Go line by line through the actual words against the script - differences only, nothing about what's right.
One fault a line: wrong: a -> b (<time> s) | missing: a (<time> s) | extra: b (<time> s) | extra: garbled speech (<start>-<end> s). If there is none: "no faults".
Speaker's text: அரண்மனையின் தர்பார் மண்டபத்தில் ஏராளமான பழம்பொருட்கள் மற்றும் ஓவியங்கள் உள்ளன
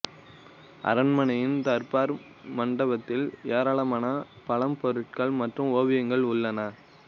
no faults